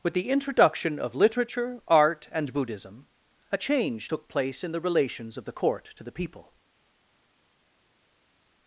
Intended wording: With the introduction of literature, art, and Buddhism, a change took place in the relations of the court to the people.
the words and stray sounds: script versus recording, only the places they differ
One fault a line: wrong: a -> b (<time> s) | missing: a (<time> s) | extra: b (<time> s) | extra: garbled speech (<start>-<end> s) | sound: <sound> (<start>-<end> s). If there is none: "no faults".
no faults